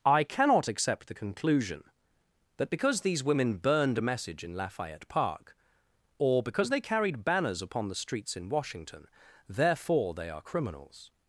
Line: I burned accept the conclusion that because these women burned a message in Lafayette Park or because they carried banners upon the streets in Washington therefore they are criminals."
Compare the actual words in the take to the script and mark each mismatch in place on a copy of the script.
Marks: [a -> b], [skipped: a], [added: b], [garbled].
I [burned -> cannot] accept the conclusion that because these women burned a message in Lafayette Park or because they carried banners upon the streets in Washington therefore they are criminals."